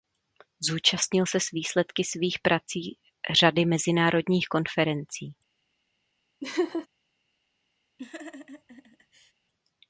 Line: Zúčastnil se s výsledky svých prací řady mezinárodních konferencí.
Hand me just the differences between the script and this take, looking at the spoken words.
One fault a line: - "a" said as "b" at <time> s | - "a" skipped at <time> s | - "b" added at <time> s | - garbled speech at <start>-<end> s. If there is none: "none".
none